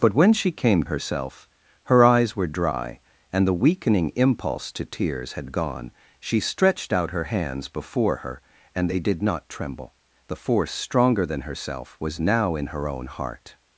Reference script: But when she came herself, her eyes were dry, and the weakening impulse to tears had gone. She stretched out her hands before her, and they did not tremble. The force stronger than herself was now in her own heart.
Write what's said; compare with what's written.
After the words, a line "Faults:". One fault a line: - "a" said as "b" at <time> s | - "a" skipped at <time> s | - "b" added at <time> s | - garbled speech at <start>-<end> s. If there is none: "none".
But when she came herself, her eyes were dry, and the weakening impulse to tears had gone. She stretched out her hands before her, and they did not tremble. The force stronger than herself was now in her own heart.
Faults:
none